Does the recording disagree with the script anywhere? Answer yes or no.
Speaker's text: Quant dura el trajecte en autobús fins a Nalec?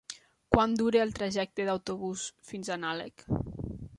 no